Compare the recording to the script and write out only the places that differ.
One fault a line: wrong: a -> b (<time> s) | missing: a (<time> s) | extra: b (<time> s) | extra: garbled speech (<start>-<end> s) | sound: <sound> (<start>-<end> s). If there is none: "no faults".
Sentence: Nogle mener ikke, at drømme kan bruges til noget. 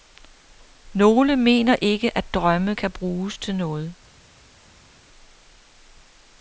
no faults